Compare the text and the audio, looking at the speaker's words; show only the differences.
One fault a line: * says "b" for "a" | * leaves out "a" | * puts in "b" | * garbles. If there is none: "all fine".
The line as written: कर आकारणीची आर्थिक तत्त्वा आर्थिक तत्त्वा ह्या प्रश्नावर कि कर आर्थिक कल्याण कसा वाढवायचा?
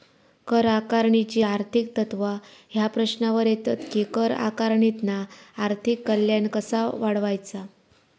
* leaves out "आर्थिक तत्त्वा"
* puts in "येतत"
* puts in "आकारणीतना"